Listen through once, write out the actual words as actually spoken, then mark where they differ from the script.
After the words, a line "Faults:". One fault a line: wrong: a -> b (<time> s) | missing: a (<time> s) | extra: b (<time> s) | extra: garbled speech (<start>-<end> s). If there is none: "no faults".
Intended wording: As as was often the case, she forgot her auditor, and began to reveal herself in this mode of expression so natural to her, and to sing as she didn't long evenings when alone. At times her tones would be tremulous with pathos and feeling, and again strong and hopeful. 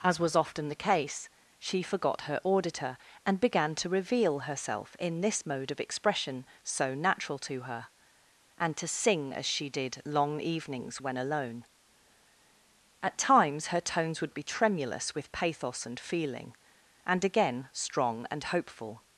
As was often the case, she forgot her auditor, and began to reveal herself in this mode of expression so natural to her, and to sing as she did long evenings when alone. At times her tones would be tremulous with pathos and feeling, and again strong and hopeful.
Faults:
missing: as (0.2 s)
wrong: didn't -> did (9.7 s)